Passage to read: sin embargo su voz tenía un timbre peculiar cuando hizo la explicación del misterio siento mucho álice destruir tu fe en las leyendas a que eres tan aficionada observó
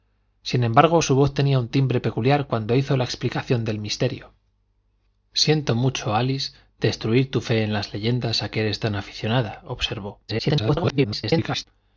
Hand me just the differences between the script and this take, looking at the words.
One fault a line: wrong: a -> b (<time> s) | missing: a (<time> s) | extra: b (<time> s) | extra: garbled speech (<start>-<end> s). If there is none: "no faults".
extra: garbled speech (10.3-11.6 s)